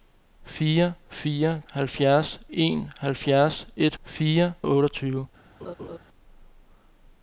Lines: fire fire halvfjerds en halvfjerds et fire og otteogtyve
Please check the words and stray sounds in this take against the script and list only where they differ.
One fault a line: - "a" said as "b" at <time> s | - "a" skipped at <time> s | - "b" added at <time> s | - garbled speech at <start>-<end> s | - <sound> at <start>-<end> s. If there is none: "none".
- laugh at 5.6-6.0 s